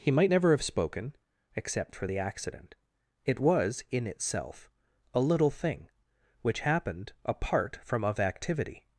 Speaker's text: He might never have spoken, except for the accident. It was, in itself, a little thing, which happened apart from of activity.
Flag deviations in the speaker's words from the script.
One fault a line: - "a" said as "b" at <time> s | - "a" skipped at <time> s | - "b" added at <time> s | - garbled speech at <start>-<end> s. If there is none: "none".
none